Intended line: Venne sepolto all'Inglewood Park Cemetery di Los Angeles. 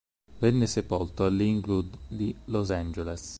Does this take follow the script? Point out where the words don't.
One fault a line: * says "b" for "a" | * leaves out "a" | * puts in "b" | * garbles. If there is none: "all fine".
* leaves out "Park Cemetery"